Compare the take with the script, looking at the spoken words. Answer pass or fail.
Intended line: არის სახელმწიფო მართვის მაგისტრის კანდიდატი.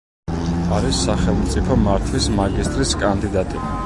pass